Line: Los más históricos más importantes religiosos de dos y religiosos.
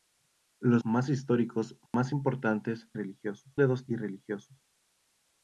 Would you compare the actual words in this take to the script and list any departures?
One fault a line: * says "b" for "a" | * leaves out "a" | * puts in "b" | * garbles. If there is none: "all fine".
all fine